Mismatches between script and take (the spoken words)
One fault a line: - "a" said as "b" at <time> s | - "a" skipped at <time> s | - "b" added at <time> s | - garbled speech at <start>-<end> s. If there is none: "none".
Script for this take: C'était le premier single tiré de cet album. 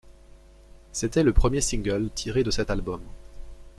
none